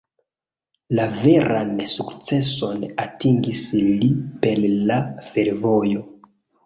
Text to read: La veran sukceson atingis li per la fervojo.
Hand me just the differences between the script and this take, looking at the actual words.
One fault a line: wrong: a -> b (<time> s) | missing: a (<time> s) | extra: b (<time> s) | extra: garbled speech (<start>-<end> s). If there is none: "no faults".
no faults